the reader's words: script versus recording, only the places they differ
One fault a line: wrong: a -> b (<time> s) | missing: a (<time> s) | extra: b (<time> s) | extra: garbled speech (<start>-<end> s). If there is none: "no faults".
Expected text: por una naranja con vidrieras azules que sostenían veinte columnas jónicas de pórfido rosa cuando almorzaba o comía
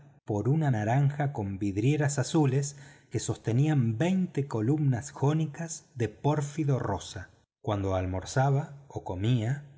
no faults